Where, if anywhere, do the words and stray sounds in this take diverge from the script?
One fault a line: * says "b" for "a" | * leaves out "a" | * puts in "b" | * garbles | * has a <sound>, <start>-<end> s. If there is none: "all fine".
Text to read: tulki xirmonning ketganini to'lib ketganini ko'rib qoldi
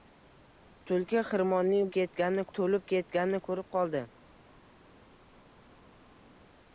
all fine